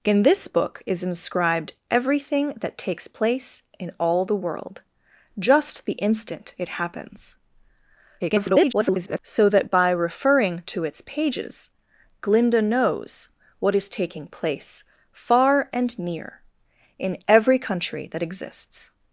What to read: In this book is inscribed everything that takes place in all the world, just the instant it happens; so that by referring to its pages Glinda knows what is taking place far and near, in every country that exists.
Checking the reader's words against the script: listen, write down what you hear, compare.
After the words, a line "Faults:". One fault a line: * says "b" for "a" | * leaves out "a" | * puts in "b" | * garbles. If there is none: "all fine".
In this book is inscribed everything that takes place in all the world, just the instant it happens; [garbled] so that by referring to its pages Glinda knows what is taking place far and near, in every country that exists.
Faults:
* garbles